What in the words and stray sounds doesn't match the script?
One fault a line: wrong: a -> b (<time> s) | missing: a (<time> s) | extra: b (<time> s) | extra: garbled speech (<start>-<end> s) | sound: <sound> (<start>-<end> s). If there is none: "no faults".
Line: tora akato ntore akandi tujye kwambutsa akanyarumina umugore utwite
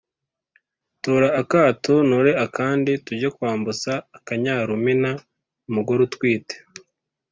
no faults